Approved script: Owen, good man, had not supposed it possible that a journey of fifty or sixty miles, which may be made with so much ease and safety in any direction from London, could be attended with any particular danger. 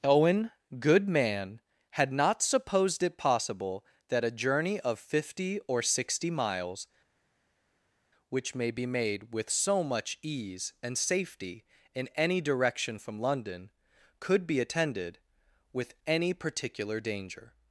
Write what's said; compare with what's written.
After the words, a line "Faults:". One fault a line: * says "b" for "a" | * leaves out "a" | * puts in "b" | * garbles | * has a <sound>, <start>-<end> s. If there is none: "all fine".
Owen, good man, had not supposed it possible that a journey of fifty or sixty miles, which may be made with so much ease and safety in any direction from London, could be attended with any particular danger.
Faults:
all fine